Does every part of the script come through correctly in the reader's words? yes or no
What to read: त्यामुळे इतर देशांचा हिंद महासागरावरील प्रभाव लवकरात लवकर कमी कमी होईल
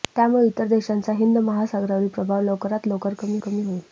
yes